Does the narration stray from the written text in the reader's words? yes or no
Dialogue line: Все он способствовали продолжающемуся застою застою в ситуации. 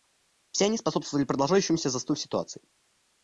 yes